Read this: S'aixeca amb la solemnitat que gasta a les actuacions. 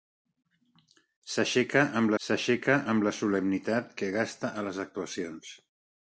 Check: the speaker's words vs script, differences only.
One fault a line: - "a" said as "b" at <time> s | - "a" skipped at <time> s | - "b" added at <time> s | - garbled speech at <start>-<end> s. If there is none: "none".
- "s'aixeca amb" added at 2.2 s